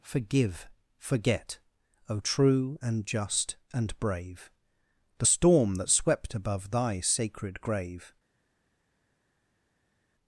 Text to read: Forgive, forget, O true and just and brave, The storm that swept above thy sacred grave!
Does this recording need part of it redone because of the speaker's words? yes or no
no